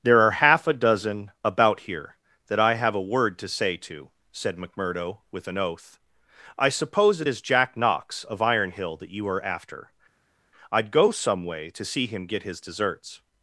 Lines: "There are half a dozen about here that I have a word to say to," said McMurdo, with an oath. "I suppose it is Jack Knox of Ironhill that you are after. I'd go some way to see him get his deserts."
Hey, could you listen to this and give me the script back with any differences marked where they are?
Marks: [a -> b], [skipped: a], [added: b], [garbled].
"There are half a dozen about here that I have a word to say to," said McMurdo, with an oath. "I suppose it is Jack Knox of Ironhill that you are after. I'd go some way to see him get his deserts."